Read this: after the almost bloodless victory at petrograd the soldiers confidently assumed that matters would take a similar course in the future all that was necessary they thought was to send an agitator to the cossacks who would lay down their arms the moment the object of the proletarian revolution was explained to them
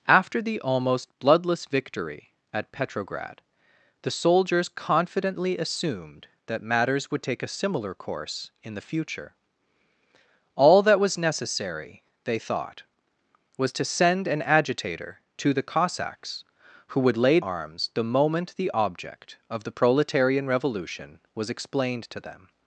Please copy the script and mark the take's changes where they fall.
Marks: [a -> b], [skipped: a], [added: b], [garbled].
after the almost bloodless victory at petrograd the soldiers confidently assumed that matters would take a similar course in the future all that was necessary they thought was to send an agitator to the cossacks who would lay [skipped: down their] arms the moment the object of the proletarian revolution was explained to them